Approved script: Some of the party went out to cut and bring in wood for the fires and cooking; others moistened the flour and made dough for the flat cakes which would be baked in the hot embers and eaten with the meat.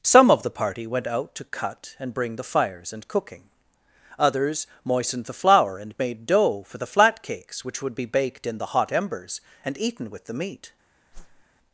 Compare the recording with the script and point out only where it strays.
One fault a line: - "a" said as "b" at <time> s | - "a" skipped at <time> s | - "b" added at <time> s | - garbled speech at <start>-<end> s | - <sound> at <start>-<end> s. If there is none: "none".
- "in wood for" skipped at 2.4 s
- whoosh at 11.1-11.5 s